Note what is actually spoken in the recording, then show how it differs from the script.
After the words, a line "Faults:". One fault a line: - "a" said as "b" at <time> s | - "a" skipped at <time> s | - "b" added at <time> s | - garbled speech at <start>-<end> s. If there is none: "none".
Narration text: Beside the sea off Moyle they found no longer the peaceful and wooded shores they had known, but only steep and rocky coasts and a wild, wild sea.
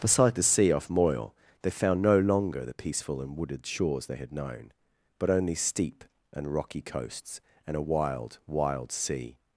Beside the sea off Moyle they found no longer the peaceful and wooded shores they had known, but only steep and rocky coasts and a wild, wild sea.
Faults:
none